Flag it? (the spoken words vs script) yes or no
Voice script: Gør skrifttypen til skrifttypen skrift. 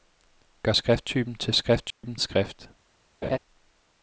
no